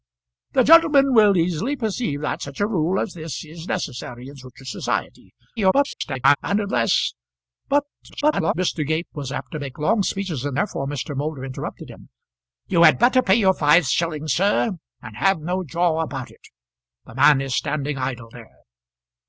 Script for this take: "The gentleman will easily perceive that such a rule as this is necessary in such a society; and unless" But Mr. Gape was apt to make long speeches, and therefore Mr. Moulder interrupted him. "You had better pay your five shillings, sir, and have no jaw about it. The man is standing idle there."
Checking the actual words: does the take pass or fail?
fail